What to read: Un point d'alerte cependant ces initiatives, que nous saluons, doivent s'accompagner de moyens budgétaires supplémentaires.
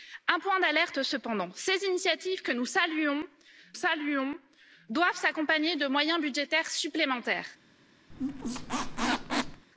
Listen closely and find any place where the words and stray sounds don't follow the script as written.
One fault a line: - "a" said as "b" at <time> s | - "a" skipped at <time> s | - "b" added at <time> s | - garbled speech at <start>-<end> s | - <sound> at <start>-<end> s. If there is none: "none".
- "saluons" added at 3.7 s
- squeak at 8.1-9.6 s